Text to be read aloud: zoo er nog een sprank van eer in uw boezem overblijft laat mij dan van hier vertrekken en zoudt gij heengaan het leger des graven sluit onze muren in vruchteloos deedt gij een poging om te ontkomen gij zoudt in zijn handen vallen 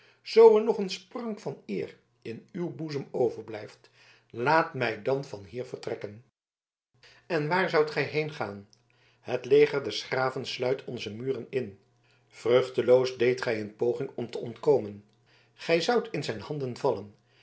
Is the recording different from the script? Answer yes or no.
yes